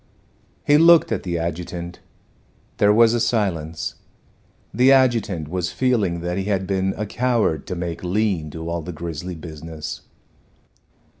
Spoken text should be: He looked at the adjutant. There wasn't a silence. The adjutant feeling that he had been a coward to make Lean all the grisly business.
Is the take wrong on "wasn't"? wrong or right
wrong